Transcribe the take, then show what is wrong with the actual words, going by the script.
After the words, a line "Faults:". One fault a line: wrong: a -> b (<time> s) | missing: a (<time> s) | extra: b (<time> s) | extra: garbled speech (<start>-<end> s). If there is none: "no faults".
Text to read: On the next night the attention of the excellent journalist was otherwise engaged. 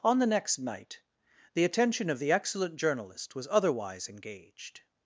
On the next night the attention of the excellent journalist was otherwise engaged.
Faults:
no faults